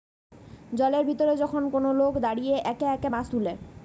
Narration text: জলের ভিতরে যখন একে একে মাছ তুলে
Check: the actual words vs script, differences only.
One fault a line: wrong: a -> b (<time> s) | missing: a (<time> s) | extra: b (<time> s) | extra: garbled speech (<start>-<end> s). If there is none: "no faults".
extra: কোন লোক দাঁড়িয়ে (1.7 s)